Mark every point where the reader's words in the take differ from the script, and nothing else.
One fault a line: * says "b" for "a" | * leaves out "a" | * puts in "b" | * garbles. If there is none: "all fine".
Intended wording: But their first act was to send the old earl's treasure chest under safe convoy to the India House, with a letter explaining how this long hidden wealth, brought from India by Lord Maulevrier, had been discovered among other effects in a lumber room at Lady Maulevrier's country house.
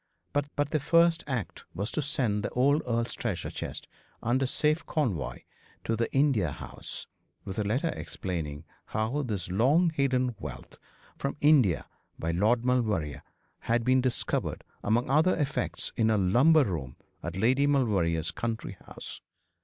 * puts in "but"
* leaves out "brought"